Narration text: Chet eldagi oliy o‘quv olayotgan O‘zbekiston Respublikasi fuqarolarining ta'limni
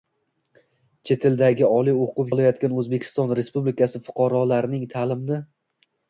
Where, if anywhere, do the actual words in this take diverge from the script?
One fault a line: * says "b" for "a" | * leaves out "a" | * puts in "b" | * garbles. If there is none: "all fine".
all fine